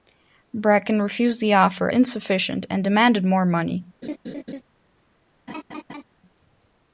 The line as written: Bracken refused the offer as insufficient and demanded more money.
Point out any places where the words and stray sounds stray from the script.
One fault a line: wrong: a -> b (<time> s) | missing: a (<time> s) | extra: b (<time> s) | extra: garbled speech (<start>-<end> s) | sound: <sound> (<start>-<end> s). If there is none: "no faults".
missing: as (1.9 s)
sound: laugh (4.0-4.6 s)
sound: laugh (5.5-6.0 s)